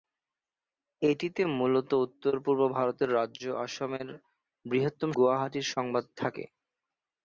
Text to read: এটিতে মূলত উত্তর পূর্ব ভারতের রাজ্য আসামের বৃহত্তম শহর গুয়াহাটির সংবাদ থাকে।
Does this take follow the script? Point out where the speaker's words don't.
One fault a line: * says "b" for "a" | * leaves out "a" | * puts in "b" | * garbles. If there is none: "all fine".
* leaves out "শহর"